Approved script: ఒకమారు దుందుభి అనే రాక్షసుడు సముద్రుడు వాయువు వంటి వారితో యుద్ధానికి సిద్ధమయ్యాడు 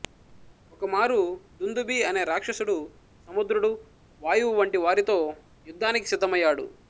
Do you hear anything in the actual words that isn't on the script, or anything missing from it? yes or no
no